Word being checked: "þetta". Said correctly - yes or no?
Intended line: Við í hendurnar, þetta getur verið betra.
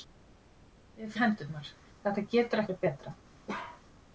yes